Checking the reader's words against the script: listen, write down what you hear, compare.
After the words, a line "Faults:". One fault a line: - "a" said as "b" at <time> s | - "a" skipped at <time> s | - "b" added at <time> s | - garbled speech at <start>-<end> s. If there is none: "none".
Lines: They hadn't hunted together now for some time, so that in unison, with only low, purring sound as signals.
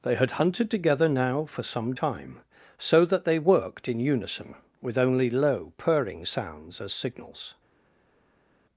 They had hunted together now for some time, so that they worked in unison, with only low, purring sounds as signals.
Faults:
- "hadn't" said as "had" at 0.1 s
- "they worked" added at 3.2 s
- "sound" said as "sounds" at 6.2 s